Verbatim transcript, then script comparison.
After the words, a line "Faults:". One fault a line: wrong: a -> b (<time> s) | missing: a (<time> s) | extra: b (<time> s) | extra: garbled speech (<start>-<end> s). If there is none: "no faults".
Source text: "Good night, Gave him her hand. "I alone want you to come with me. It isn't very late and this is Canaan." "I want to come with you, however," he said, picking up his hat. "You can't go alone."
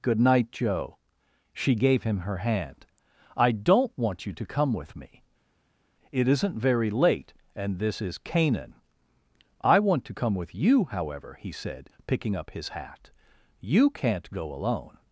"Good night, Joe." She gave him her hand. "I don't want you to come with me. It isn't very late and this is Canaan." "I want to come with you, however," he said, picking up his hat. "You can't go alone."
Faults:
extra: Joe She (0.5 s)
wrong: alone -> don't (3.5 s)